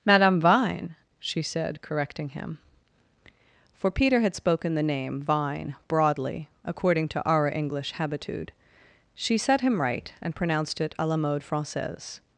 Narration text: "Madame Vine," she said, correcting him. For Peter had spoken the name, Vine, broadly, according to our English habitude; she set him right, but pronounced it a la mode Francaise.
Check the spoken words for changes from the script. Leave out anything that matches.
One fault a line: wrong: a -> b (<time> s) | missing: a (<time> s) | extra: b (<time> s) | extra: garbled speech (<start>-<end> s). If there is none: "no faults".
wrong: but -> and (10.2 s)